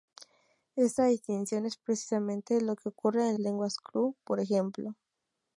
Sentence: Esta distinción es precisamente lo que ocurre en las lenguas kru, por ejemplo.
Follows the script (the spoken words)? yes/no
no